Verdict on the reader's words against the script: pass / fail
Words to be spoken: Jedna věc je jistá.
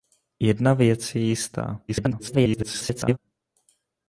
fail